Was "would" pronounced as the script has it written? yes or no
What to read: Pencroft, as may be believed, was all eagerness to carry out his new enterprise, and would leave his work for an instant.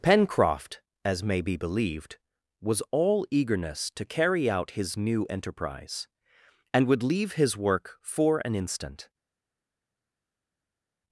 yes